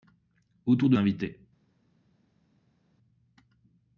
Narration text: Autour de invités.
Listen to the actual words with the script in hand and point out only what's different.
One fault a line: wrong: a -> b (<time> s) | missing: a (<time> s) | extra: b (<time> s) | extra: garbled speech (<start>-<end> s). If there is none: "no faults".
no faults